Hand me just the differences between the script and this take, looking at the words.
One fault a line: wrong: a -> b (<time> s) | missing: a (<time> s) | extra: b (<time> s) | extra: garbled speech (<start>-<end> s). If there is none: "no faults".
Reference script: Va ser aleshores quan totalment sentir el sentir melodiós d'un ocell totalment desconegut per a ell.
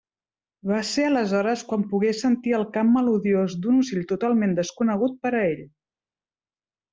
wrong: totalment -> pogué (1.9 s)
wrong: sentir -> cant (2.8 s)